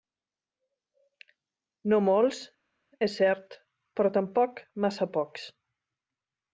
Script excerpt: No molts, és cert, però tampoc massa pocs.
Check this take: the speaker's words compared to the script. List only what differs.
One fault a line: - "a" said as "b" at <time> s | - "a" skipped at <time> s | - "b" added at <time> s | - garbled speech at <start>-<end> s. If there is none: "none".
none